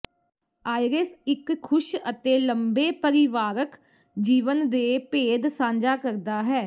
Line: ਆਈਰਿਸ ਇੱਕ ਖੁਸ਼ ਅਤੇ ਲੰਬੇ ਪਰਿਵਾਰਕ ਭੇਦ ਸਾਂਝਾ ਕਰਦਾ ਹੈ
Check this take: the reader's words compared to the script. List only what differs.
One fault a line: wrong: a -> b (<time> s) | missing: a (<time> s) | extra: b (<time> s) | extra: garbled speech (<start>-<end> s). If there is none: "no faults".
extra: ਜੀਵਨ ਦੇ (4.2 s)